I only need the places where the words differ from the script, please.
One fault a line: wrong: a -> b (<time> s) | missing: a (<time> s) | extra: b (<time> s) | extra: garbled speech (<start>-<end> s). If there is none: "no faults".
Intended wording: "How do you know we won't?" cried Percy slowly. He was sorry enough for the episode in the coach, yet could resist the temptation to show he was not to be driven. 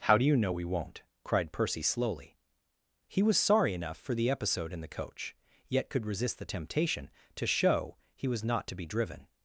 no faults